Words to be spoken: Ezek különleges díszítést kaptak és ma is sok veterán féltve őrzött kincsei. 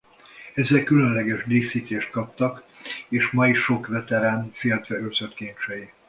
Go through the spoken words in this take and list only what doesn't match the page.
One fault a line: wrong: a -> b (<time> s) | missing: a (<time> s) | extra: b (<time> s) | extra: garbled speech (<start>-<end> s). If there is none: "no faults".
no faults